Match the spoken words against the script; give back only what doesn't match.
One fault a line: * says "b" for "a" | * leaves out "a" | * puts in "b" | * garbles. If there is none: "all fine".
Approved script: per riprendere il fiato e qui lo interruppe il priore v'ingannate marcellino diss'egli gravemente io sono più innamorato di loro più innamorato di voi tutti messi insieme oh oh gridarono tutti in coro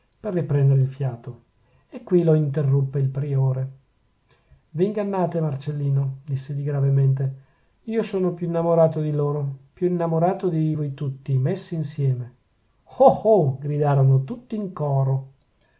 all fine